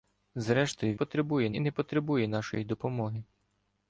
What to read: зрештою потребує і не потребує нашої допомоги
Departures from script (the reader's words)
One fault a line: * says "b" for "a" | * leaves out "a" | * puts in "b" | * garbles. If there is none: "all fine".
all fine